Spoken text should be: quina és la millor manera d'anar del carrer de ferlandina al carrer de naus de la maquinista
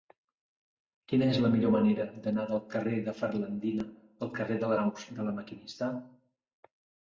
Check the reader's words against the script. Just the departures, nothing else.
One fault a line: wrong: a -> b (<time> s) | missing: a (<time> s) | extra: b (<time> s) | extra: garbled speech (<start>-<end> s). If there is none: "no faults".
no faults